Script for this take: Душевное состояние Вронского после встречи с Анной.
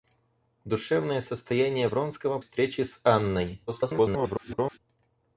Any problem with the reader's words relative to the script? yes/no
yes